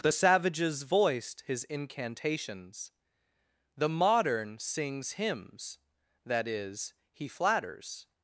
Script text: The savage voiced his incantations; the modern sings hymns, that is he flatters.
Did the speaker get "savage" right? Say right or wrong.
wrong